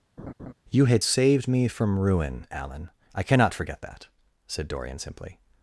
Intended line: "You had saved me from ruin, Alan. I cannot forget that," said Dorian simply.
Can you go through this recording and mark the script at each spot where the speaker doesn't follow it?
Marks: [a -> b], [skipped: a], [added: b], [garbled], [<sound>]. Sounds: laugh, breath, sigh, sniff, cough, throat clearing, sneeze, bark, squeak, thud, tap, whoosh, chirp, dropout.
[laugh] "You had saved me from ruin, Alan. I cannot forget that," said Dorian simply.